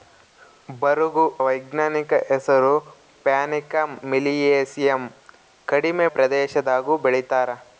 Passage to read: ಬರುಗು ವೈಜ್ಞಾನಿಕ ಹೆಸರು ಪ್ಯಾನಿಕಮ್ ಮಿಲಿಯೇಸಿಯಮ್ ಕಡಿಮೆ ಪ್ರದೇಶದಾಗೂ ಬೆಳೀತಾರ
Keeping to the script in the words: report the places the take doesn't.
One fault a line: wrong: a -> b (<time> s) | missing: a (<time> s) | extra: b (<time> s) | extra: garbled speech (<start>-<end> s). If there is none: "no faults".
no faults